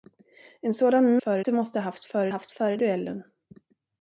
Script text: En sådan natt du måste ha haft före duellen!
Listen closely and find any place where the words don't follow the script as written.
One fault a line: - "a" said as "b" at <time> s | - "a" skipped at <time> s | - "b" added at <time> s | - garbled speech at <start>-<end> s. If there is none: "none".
- "natt" said as "före" at 1.2 s
- "haft före" added at 2.3 s